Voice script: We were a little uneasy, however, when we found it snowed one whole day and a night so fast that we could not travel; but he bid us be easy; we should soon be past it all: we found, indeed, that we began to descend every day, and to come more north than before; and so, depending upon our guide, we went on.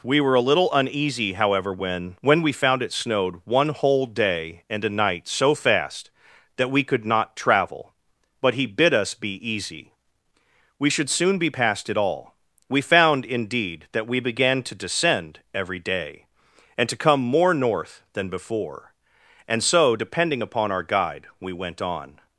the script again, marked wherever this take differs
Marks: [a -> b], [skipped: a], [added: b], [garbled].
We were a little uneasy, however, when [added: when] we found it snowed one whole day and a night so fast that we could not travel; but he bid us be easy; we should soon be past it all: we found, indeed, that we began to descend every day, and to come more north than before; and so, depending upon our guide, we went on.